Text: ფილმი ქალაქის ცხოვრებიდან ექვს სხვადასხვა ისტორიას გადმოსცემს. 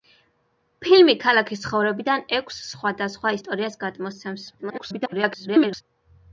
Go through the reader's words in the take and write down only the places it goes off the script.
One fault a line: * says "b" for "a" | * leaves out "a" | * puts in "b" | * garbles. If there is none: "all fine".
* garbles